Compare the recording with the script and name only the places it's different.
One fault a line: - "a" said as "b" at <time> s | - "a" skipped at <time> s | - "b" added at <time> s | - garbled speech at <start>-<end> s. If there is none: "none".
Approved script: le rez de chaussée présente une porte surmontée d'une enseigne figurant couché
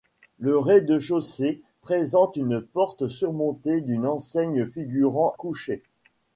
none